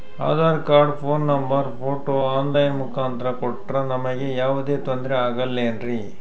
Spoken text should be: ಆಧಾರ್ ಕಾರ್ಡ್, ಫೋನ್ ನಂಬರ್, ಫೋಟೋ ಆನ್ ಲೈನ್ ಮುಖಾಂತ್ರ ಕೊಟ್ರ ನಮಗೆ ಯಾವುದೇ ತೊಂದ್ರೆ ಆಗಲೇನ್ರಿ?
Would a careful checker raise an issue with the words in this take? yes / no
no